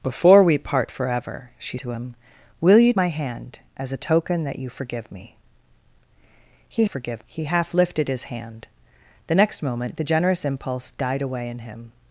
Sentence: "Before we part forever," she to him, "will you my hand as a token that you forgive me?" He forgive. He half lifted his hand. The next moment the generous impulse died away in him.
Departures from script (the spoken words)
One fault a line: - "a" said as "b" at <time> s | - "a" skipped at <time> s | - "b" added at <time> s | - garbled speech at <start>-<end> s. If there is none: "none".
none